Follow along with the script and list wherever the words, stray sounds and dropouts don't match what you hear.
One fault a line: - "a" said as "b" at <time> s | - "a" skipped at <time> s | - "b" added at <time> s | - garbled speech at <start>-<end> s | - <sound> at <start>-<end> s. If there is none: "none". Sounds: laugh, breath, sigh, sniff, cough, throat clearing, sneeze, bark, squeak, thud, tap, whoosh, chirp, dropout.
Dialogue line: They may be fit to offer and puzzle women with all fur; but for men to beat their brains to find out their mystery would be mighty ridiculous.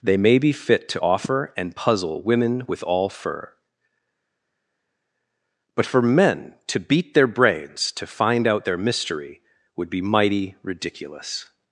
none